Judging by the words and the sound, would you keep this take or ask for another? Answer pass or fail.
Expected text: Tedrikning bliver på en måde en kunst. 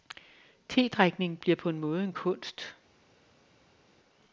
pass